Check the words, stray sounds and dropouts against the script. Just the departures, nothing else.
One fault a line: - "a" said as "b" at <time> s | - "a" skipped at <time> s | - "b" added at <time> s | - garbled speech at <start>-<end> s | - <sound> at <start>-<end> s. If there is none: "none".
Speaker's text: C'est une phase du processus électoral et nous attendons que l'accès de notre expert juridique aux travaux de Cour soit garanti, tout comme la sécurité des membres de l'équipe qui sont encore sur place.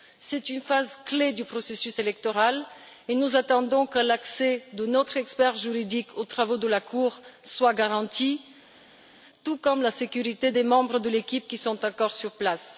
- "clé" added at 1.1 s
- "la" added at 6.7 s